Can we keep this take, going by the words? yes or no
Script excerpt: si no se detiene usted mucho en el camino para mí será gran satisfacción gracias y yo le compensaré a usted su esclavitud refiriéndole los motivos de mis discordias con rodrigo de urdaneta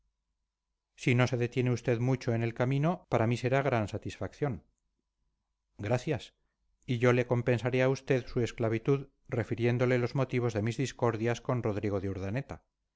yes